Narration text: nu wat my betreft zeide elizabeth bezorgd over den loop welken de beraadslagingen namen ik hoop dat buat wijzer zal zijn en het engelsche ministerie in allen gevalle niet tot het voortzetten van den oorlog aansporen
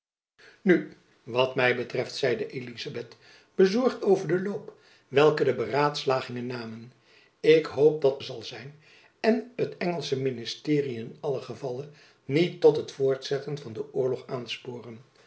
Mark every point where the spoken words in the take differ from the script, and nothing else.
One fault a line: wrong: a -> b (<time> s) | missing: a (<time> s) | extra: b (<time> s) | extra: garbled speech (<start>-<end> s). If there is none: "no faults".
missing: buat wijzer (8.2 s)